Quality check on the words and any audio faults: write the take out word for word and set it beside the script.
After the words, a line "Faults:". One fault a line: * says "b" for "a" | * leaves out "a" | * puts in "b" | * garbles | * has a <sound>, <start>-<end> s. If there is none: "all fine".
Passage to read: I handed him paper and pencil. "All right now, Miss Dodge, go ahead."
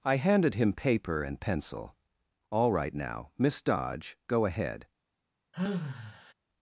I handed him paper and pencil. "All right now, Miss Dodge, go ahead."
Faults:
* has a sigh, 5.5-6.3 s